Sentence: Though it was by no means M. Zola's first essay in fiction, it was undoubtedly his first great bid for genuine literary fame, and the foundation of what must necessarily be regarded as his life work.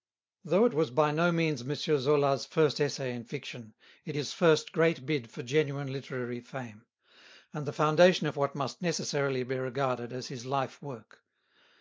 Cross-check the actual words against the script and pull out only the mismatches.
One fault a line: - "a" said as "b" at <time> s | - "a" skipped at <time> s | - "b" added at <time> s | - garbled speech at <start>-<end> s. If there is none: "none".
- "was undoubtedly" skipped at 4.2 s